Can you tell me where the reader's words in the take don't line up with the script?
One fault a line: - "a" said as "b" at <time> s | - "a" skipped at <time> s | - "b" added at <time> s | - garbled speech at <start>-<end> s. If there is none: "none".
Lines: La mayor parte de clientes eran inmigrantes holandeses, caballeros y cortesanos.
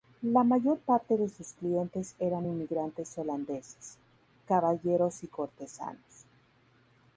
- "sus" added at 1.3 s